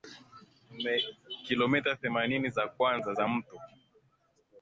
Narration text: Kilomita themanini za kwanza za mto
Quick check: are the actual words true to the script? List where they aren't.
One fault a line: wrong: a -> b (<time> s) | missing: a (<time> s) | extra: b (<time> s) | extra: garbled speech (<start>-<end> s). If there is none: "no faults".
no faults